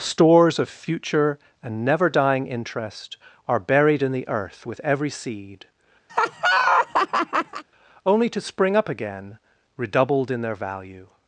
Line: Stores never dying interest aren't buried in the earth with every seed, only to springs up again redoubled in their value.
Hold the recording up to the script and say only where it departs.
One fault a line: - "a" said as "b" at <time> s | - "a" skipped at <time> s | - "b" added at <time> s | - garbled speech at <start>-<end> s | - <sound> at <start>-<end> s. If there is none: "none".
- "of future and" added at 0.6 s
- "aren't" said as "are" at 3.5 s
- laugh at 6.1-7.6 s
- "springs" said as "spring" at 8.4 s